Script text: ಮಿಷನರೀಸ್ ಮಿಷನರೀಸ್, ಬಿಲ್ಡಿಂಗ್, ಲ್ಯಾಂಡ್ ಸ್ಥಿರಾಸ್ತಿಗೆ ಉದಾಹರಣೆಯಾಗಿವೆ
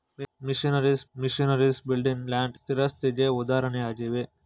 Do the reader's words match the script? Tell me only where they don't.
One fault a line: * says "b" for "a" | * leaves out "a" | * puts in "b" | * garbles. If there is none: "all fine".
all fine